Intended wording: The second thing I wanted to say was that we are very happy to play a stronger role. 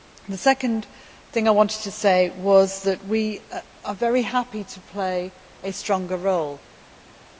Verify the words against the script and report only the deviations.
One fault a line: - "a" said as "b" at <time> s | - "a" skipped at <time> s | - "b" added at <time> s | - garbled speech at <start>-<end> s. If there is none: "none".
none